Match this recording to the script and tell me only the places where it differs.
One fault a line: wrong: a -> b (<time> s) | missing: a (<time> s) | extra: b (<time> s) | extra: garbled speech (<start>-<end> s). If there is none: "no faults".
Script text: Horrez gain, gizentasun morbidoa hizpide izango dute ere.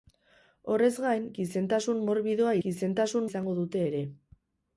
wrong: hizpide -> gizentasun (2.6 s)